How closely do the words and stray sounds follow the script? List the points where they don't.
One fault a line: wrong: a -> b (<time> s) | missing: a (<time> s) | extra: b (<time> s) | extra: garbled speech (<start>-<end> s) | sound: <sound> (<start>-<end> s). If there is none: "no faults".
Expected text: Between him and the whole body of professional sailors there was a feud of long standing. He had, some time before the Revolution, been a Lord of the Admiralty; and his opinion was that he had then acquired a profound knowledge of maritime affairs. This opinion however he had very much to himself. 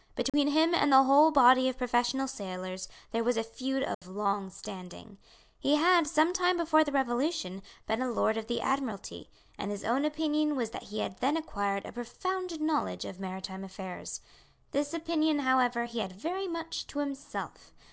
sound: dropout (0.3-0.3 s)
sound: dropout (3.9-4.0 s)
extra: own (9.8 s)